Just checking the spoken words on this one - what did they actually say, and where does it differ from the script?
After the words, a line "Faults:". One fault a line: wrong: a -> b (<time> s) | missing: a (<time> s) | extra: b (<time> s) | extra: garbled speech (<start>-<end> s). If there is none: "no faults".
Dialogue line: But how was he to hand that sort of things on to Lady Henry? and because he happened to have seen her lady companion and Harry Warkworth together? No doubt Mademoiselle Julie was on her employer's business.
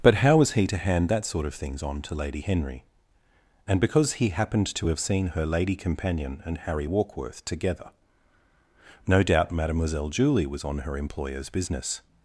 But how was he to hand that sort of things on to Lady Henry? and because he happened to have seen her lady companion and Harry Warkworth together? No doubt Mademoiselle Julie was on her employer's business.
Faults:
no faults